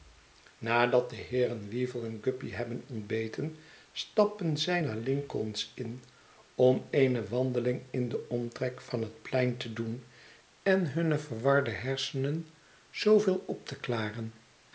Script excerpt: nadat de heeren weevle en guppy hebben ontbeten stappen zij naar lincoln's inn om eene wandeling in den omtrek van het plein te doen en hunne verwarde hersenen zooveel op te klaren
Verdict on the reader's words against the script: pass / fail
pass